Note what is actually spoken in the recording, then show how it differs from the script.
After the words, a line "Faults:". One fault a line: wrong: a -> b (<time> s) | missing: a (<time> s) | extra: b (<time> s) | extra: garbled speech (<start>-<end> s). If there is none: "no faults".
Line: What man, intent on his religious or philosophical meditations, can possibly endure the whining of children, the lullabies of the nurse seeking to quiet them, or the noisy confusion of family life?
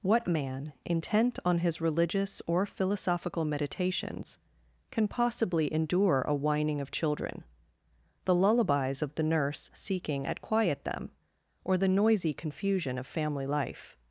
What man, intent on his religious or philosophical meditations, can possibly endure a whining of children, the lullabies of the nurse seeking at quiet them, or the noisy confusion of family life?
Faults:
wrong: the -> a (6.3 s)
wrong: to -> at (10.2 s)